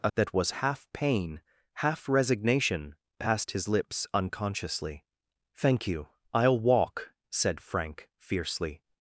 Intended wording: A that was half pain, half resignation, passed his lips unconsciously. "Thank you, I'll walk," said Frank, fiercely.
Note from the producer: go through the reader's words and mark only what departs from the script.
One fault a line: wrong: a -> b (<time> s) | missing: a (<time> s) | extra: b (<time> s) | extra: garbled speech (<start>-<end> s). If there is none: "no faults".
no faults